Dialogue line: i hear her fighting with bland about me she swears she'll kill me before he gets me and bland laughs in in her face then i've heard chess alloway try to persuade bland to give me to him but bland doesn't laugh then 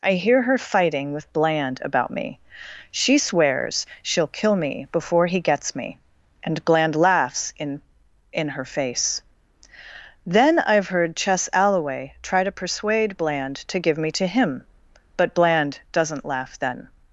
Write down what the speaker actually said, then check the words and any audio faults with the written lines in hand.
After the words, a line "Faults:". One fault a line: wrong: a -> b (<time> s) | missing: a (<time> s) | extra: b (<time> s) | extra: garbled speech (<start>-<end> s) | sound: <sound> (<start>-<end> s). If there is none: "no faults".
i hear her fighting with bland about me she swears she'll kill me before he gets me and bland laughs in in her face then i've heard chess alloway try to persuade bland to give me to him but bland doesn't laugh then
Faults:
no faults